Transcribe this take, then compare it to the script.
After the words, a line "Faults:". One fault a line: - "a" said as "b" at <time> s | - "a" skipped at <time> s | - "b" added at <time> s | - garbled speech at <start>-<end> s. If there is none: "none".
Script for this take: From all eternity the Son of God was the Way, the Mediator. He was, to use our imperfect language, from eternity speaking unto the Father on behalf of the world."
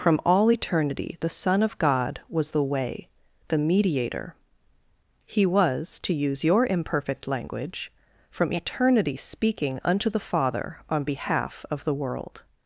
From all eternity the Son of God was the Way, the Mediator. He was, to use your imperfect language, from eternity speaking unto the Father on behalf of the world."
Faults:
- "our" said as "your" at 6.4 s